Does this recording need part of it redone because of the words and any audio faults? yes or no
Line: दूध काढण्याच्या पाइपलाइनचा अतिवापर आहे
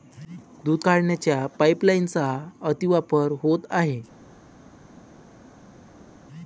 yes